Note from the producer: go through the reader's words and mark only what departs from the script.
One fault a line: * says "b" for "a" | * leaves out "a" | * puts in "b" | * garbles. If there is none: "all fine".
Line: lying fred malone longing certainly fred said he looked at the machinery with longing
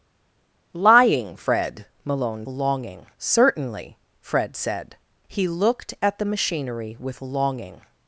all fine